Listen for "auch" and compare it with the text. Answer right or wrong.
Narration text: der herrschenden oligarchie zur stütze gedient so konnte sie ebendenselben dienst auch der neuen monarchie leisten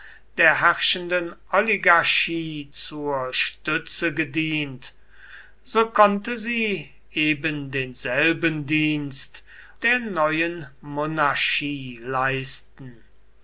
wrong